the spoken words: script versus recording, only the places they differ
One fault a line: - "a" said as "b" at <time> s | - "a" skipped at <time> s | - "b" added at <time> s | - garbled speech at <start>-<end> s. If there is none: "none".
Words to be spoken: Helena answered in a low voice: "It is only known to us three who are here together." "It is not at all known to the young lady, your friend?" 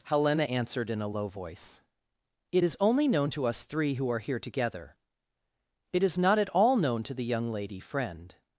- "your" skipped at 7.8 s